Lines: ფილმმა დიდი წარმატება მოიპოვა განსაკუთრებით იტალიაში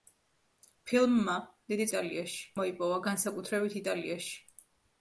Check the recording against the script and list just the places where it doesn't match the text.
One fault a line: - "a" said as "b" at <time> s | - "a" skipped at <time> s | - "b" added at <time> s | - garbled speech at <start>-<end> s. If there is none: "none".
- "წარმატება" said as "იტალიაში" at 1.9 s